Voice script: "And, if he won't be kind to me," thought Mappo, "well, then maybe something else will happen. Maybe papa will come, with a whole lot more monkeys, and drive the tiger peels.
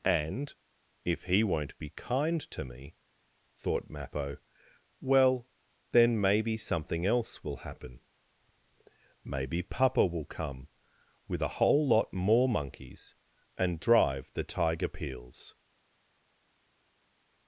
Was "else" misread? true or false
false